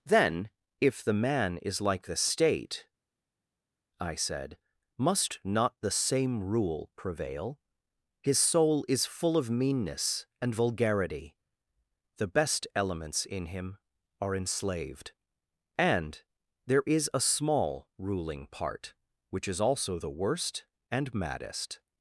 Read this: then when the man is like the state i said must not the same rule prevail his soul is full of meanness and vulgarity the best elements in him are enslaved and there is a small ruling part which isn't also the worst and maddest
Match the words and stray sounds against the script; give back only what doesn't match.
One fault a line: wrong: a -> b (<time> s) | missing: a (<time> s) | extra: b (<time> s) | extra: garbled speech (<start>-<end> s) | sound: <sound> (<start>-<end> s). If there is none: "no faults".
wrong: when -> if (0.8 s)
wrong: isn't -> is (19.5 s)